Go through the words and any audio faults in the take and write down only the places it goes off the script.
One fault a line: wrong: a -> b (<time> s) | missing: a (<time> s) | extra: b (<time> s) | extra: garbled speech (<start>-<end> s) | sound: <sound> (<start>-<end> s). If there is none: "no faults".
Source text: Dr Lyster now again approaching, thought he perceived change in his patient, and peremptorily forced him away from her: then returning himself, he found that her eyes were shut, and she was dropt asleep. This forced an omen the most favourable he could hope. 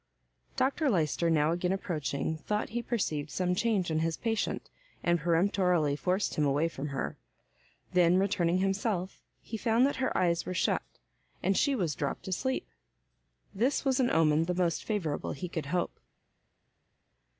extra: some (3.3 s)
wrong: forced -> was (13.8 s)